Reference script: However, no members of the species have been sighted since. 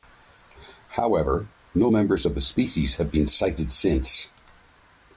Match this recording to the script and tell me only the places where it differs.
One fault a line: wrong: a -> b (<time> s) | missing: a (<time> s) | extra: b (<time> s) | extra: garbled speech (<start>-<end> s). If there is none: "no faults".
no faults